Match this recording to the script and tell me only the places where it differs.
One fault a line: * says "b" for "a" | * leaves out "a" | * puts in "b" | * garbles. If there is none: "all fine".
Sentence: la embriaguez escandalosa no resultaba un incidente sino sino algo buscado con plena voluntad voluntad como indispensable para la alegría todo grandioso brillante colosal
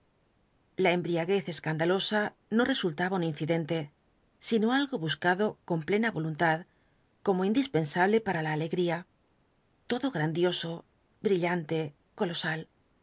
* leaves out "sino"
* leaves out "voluntad"